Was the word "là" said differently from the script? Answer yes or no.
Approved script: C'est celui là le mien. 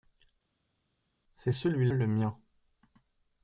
yes